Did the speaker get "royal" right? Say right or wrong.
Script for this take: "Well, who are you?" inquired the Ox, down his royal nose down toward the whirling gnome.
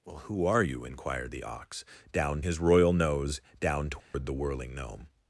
right